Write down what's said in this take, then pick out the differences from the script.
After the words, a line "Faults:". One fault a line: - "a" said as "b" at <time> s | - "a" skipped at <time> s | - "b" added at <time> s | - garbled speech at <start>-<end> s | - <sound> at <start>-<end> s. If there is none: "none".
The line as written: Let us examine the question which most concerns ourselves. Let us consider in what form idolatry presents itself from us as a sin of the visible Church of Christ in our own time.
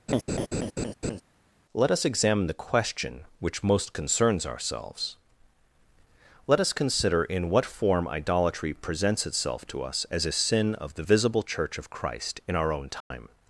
Let us examine the question which most concerns ourselves. Let us consider in what form idolatry presents itself to us as a sin of the visible Church of Christ in our own time.
Faults:
- laugh at 0.1-1.2 s
- "from" said as "to" at 9.7 s
- dropout at 13.0-13.1 s